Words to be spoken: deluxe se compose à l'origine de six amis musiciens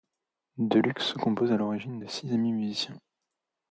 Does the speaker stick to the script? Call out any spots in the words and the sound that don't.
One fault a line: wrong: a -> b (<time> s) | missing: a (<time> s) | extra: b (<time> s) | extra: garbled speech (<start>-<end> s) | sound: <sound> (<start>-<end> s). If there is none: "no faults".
no faults